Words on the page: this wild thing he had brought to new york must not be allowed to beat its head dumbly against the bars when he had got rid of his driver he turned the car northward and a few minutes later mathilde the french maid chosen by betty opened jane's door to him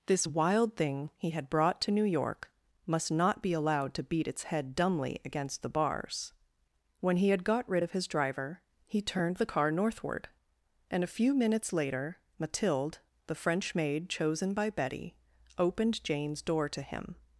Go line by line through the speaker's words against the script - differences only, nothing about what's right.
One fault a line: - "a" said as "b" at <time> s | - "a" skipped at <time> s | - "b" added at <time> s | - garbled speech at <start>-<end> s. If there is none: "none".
none